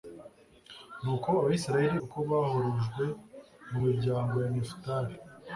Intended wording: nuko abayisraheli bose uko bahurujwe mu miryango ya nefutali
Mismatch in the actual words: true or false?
true